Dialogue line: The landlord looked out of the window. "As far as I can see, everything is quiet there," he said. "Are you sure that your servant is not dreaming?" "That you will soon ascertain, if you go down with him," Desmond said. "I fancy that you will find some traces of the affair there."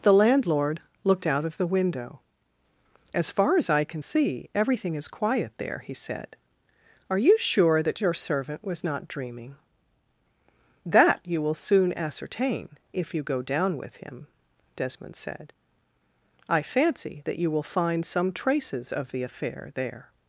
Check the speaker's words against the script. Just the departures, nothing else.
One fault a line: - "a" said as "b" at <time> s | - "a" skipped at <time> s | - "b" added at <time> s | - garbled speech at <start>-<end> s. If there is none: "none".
- "is" said as "was" at 8.6 s